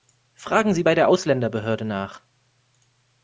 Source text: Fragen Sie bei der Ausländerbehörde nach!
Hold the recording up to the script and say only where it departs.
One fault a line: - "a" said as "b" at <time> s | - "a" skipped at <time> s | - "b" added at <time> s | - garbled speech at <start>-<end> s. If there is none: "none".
none